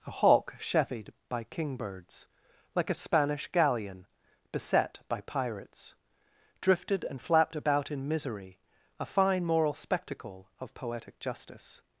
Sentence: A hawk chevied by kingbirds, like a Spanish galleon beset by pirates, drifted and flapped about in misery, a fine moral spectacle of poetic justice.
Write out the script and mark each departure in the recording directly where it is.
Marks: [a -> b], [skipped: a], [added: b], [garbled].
A hawk chevied by kingbirds, like a Spanish galleon beset by pirates, drifted and flapped about in misery, a fine moral spectacle of poetic justice.